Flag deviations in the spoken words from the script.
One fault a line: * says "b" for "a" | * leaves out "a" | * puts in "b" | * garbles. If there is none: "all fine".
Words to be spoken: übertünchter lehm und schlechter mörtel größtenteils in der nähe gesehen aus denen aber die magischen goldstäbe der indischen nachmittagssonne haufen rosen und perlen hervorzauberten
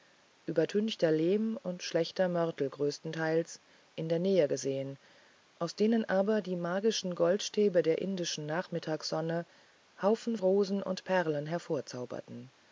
all fine